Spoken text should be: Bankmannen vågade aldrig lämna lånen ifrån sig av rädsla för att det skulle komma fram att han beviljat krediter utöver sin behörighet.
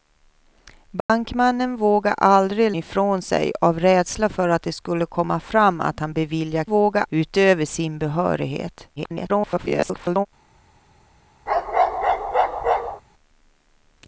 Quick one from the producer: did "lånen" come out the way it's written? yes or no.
no